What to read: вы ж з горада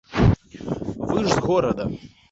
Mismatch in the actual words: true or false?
false